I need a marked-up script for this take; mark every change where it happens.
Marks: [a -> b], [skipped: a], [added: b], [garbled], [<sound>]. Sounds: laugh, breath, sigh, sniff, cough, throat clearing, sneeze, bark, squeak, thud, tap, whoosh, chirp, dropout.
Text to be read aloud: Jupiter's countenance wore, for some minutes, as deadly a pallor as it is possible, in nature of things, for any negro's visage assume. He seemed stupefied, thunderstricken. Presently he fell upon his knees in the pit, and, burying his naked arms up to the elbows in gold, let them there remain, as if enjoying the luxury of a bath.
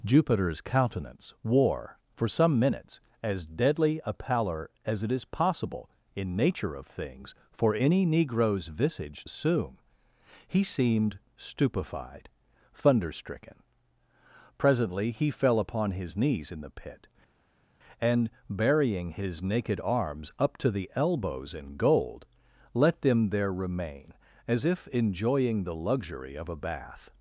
Jupiter's countenance wore, for some minutes, as deadly a pallor as it is possible, in nature of things, for any negro's visage assume. He seemed stupefied, thunderstricken. Presently he fell upon his knees in the pit, and, burying his naked arms up to the elbows in gold, let them there remain, as if enjoying the luxury of a bath.